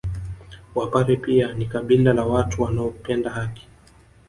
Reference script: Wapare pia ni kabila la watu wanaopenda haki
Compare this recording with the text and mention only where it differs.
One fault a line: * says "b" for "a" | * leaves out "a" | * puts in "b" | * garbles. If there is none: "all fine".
all fine